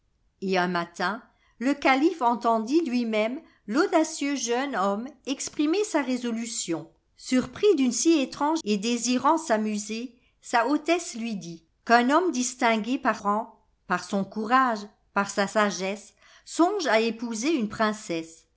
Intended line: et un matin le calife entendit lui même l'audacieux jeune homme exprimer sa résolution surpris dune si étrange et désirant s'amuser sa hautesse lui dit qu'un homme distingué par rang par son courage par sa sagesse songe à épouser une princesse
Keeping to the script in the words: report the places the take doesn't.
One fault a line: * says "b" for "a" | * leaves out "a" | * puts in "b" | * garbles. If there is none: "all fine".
all fine